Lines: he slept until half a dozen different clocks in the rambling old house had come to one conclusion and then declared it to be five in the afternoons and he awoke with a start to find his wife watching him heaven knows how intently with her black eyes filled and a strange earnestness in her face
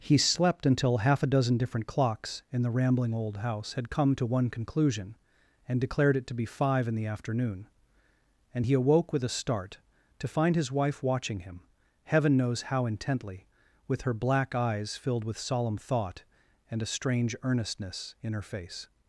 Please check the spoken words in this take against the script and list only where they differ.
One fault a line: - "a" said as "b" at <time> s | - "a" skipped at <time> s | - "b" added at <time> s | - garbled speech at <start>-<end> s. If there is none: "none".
- "then" skipped at 5.8 s
- "afternoons" said as "afternoon" at 7.0 s
- "with solemn thought" added at 15.3 s